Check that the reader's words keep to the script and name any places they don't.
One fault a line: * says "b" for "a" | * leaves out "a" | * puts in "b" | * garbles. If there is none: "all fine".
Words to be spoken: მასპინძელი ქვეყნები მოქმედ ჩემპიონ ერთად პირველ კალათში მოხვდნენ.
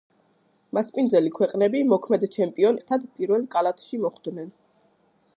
all fine